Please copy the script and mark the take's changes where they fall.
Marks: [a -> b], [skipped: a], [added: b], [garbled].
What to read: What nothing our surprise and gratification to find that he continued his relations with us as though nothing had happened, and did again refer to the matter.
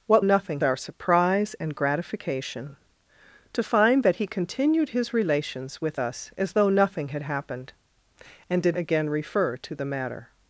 What nothing our surprise and gratification to find that he continued his relations with us as though nothing had happened, and did again refer to the matter.